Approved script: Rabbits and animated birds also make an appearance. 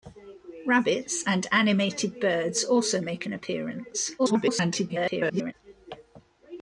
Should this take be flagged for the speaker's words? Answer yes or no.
yes